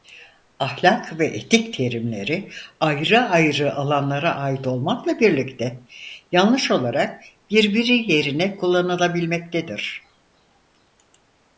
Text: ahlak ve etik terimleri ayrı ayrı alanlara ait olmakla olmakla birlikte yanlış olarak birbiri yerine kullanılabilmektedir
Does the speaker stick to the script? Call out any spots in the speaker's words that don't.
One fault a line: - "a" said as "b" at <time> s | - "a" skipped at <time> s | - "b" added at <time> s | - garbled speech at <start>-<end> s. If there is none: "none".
- "olmakla" skipped at 5.2 s